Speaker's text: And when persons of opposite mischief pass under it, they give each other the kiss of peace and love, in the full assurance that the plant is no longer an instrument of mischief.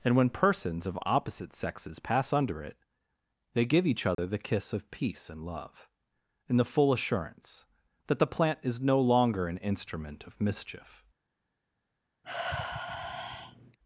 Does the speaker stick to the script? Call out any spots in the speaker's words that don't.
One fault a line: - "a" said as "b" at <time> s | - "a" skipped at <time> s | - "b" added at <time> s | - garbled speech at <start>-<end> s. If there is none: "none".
- "mischief" said as "sexes" at 1.5 s